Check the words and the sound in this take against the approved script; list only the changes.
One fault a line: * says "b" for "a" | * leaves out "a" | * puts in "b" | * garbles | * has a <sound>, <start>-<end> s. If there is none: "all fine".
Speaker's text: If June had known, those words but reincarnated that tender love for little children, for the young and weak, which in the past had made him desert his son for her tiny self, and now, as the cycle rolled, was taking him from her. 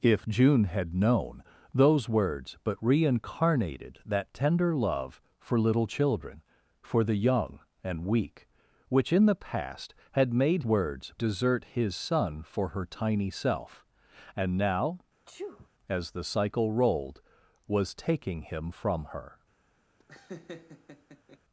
* says "words" for "him"
* has a sneeze, 15.3-15.7 s
* has a laugh, 20.0-21.4 s